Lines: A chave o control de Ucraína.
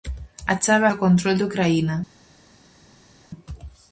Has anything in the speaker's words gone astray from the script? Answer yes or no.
no